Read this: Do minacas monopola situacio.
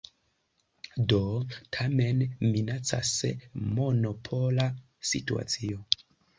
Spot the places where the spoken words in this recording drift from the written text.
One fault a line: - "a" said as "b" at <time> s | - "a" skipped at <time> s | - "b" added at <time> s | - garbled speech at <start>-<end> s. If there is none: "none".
- "tamen" added at 1.8 s